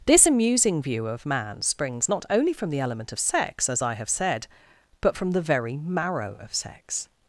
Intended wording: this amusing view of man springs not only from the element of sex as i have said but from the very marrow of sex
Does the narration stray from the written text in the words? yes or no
no